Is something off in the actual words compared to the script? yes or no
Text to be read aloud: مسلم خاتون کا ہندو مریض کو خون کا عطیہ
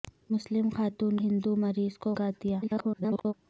yes